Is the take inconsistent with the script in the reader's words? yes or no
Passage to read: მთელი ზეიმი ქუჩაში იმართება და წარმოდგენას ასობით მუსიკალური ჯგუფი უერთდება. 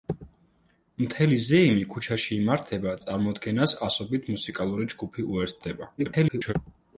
yes